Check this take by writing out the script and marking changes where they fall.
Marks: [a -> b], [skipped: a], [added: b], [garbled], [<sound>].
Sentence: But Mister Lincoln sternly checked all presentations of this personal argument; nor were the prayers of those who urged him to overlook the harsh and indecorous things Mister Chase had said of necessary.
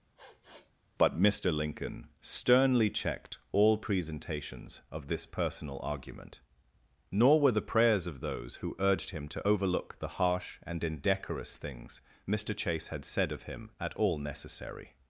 [sniff] But Mister Lincoln sternly checked all presentations of this personal argument; nor were the prayers of those who urged him to overlook the harsh and indecorous things Mister Chase had said of [added: him at all] necessary.